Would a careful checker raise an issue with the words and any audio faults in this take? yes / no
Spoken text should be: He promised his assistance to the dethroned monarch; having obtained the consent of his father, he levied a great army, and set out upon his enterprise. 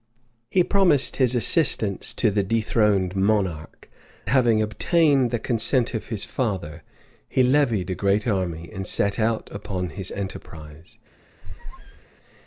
yes